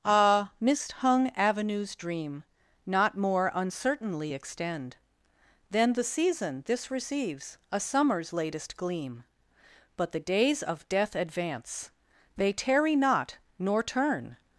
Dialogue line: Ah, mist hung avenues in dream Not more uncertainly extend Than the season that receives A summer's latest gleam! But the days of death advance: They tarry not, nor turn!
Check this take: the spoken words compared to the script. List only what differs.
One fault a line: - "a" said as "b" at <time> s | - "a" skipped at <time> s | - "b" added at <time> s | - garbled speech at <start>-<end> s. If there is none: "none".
- "in" skipped at 1.9 s
- "that" said as "this" at 6.7 s